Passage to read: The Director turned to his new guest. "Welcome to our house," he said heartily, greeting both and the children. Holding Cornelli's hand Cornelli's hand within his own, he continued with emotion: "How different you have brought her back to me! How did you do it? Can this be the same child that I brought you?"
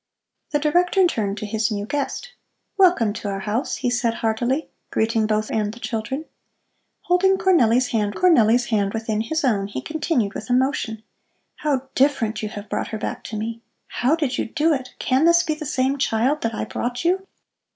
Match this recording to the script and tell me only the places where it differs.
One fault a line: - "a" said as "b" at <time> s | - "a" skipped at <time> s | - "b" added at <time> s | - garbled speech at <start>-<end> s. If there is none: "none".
none